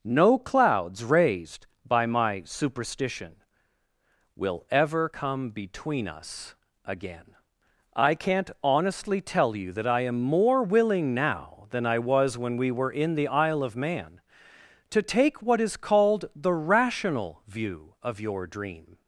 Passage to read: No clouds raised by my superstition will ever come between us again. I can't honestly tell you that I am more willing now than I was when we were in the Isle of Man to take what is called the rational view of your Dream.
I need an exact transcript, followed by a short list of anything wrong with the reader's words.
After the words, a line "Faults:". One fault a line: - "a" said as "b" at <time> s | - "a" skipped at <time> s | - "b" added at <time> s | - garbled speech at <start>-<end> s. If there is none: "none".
No clouds raised by my superstition will ever come between us again. I can't honestly tell you that I am more willing now than I was when we were in the Isle of Man to take what is called the rational view of your Dream.
Faults:
none